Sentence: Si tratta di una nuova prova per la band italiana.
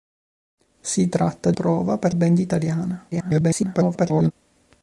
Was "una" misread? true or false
true